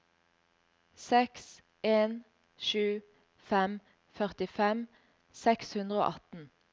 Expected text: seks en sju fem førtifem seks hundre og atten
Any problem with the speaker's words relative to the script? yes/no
no